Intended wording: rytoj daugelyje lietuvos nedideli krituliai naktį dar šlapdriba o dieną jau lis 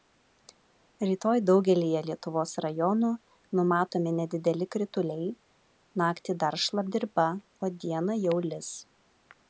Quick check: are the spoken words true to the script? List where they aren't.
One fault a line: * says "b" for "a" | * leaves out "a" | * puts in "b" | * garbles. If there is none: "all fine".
* puts in "rajonų numatomi"